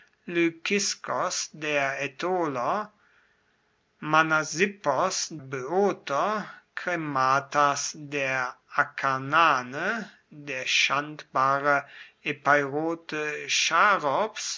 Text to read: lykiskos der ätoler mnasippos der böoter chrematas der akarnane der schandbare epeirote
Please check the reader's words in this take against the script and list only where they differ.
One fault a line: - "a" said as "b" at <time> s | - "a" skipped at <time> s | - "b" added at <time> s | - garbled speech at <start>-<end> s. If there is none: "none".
- "der" skipped at 5.3 s